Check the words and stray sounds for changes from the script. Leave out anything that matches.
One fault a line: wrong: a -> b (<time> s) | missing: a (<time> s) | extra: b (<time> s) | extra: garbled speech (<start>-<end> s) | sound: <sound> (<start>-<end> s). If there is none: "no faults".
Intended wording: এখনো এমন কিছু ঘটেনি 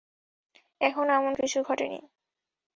no faults